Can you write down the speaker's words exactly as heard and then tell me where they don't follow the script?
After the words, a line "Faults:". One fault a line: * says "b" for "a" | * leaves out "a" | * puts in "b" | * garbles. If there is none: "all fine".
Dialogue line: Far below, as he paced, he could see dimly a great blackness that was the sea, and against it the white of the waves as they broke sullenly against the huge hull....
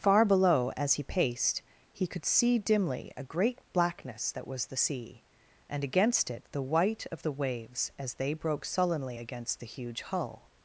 Far below, as he paced, he could see dimly a great blackness that was the sea, and against it the white of the waves as they broke sullenly against the huge hull....
Faults:
all fine